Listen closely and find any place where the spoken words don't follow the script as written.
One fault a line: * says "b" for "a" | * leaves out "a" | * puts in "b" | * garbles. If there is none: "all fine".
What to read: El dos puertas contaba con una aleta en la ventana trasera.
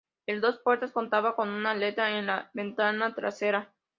all fine